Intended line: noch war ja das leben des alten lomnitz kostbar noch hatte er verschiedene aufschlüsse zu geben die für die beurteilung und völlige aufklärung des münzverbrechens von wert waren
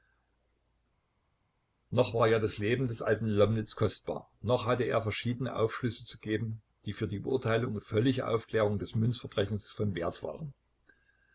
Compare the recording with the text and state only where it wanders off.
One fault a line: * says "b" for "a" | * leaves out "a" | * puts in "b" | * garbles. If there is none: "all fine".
all fine